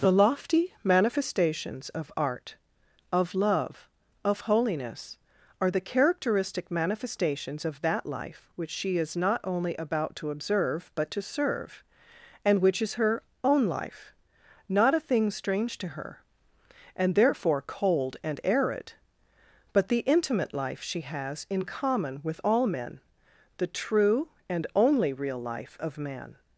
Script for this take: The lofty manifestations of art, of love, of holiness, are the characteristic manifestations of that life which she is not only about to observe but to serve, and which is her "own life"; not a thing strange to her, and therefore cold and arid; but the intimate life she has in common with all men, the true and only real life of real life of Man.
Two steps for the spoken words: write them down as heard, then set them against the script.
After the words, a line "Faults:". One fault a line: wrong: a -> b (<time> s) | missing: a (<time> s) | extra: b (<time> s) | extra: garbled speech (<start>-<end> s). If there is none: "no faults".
The lofty manifestations of art, of love, of holiness, are the characteristic manifestations of that life which she is not only about to observe but to serve, and which is her "own life"; not a thing strange to her, and therefore cold and arid; but the intimate life she has in common with all men, the true and only real life of Man.
Faults:
missing: real life of (26.0 s)